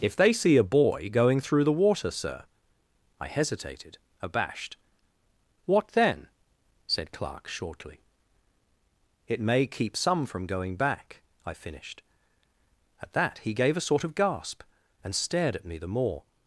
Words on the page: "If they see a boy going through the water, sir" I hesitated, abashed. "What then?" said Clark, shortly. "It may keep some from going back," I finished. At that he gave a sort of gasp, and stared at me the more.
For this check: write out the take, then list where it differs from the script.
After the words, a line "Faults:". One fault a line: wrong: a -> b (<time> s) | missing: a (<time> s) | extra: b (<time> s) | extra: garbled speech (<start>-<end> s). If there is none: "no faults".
"If they see a boy going through the water, sir" I hesitated, abashed. "What then?" said Clark, shortly. "It may keep some from going back," I finished. At that he gave a sort of gasp, and stared at me the more.
Faults:
no faults